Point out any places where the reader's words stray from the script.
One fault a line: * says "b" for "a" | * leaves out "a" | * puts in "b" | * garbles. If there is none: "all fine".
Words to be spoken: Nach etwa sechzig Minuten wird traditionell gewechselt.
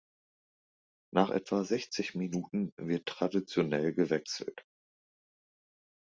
all fine